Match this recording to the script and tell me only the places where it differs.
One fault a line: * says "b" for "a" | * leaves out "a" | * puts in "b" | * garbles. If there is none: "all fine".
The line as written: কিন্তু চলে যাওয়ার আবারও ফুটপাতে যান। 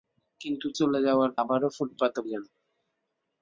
all fine